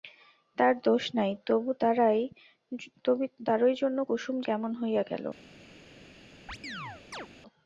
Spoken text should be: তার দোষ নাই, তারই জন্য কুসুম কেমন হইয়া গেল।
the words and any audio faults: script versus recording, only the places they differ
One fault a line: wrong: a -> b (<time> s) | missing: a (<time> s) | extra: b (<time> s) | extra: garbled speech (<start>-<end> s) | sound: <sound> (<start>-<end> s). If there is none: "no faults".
sound: chirp (6.5-7.3 s)